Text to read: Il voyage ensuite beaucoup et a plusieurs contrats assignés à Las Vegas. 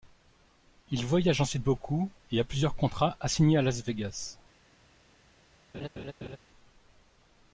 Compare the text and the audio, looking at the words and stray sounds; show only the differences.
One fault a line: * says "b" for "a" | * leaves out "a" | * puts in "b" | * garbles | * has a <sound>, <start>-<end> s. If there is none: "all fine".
* has a laugh, 5.7-6.4 s